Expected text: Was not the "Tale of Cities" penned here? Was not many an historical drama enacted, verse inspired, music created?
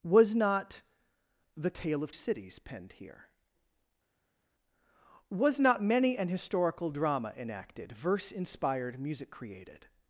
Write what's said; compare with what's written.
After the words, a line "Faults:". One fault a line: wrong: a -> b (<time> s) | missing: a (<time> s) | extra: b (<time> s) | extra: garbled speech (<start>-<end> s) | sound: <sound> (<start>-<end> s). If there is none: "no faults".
Was not the "Tale of Cities" penned here? Was not many an historical drama enacted, verse inspired, music created?
Faults:
no faults